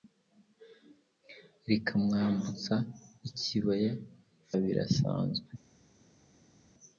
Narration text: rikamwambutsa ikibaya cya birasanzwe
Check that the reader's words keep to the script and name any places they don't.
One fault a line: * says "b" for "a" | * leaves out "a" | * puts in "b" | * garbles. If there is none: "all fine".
* leaves out "cya"